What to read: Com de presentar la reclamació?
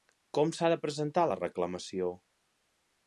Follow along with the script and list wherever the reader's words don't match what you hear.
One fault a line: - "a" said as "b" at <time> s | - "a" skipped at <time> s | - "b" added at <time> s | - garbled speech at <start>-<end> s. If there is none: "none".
- "s'ha" added at 0.6 s